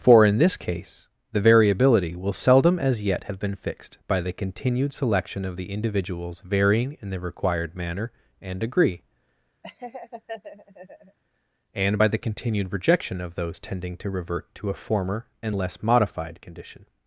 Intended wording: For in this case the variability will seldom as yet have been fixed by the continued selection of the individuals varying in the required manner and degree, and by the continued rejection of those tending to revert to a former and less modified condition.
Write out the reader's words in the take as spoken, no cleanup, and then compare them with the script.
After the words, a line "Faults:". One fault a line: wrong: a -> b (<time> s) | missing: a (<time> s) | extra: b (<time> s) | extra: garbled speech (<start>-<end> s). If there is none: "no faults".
For in this case the variability will seldom as yet have been fixed by the continued selection of the individuals varying in the required manner and degree, and by the continued rejection of those tending to revert to a former and less modified condition.
Faults:
no faults